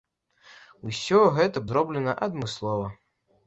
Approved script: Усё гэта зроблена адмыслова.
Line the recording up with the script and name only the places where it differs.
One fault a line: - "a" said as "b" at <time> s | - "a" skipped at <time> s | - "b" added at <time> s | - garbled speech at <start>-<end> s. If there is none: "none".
none